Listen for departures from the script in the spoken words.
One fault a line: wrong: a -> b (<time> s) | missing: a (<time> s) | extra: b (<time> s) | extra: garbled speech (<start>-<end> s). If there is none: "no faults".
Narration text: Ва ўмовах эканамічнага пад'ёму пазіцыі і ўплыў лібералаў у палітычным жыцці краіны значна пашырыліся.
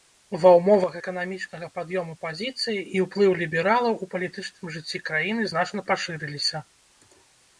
no faults